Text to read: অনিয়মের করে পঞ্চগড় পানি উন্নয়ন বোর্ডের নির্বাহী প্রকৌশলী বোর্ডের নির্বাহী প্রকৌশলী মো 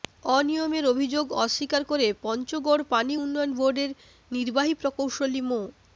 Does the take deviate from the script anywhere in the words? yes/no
yes